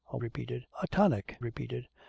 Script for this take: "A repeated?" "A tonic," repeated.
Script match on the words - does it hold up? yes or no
yes